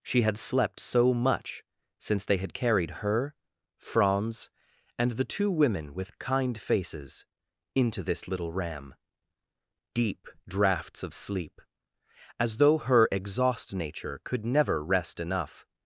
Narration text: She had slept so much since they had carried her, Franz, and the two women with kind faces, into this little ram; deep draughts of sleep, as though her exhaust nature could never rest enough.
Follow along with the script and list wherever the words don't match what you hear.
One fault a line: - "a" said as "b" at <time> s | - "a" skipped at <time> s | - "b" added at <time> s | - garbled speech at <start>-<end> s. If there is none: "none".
none